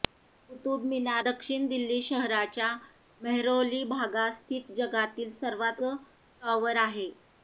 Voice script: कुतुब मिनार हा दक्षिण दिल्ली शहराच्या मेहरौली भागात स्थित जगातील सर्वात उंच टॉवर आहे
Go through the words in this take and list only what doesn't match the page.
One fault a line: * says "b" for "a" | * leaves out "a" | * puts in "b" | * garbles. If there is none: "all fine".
* leaves out "हा"
* leaves out "उंच"